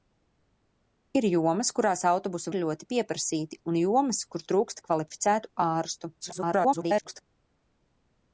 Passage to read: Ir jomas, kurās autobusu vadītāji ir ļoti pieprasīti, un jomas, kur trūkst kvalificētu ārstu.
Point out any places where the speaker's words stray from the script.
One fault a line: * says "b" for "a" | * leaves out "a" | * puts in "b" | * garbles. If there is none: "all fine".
* leaves out "vadītāji"
* garbles